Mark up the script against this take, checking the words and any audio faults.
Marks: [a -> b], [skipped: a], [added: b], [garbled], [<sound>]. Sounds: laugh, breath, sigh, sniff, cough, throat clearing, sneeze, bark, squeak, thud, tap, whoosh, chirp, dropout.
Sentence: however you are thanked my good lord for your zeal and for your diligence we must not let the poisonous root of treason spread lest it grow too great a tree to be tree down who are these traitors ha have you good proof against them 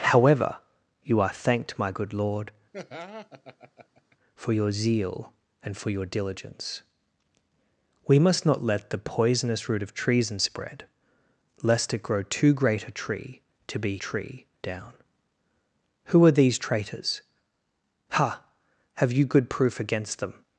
however you are thanked my good lord [laugh] for your zeal and for your diligence we must not let the poisonous root of treason spread lest it grow too great a tree to be tree down who are these traitors ha have you good proof against them